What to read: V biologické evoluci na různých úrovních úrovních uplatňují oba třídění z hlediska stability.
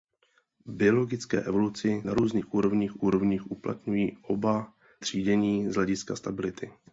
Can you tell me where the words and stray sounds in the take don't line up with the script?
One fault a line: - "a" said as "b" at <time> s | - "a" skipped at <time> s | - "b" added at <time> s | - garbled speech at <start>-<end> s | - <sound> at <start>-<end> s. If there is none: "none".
none